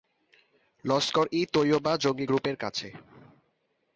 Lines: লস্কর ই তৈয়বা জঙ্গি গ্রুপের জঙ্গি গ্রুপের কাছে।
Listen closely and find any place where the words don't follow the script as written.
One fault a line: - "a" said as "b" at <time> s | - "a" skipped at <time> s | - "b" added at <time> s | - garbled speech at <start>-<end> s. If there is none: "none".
- "জঙ্গি গ্রুপের" skipped at 2.6 s